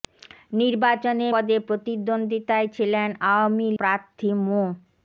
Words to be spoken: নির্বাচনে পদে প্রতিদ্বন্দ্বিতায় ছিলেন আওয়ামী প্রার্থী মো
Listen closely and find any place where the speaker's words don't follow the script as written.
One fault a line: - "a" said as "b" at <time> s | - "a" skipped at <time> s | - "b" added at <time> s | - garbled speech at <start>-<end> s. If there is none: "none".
none